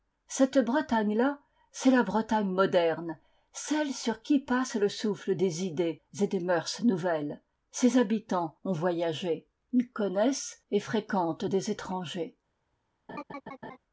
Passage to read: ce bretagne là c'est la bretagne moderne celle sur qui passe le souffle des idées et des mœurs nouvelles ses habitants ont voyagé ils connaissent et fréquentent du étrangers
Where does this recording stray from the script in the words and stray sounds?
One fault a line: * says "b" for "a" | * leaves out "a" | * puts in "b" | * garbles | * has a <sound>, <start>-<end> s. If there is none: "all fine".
* says "cette" for "ce"
* says "des" for "du"
* has a laugh, 13.1-13.8 s